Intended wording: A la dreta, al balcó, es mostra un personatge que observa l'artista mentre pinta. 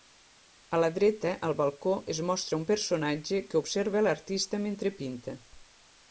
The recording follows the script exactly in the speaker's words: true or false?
true